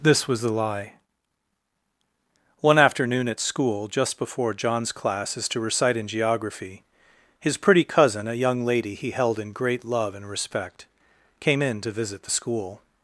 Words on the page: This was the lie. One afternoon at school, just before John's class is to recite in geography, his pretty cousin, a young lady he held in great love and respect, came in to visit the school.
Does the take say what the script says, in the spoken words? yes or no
yes